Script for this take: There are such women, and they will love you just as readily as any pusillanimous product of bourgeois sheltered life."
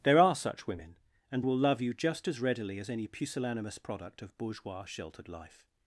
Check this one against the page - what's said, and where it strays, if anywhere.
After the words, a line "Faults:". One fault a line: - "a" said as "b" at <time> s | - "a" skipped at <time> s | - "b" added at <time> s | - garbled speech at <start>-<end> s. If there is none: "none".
There are such women, and will love you just as readily as any pusillanimous product of bourgeois sheltered life."
Faults:
- "they" skipped at 1.4 s